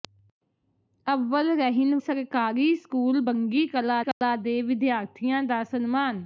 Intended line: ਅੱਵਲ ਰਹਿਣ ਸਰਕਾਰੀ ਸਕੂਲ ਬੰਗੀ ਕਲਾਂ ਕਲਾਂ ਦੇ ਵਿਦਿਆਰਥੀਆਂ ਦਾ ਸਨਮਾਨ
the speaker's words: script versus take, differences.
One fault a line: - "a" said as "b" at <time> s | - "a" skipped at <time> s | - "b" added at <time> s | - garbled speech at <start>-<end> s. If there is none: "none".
none